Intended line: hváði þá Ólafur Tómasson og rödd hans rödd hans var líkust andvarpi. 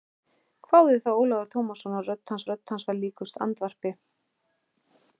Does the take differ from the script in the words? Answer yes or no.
no